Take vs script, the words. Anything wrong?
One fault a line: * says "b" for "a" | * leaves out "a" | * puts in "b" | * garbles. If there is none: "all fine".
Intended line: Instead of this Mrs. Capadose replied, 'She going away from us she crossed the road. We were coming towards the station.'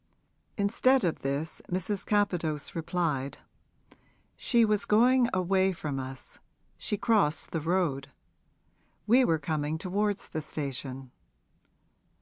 * puts in "was"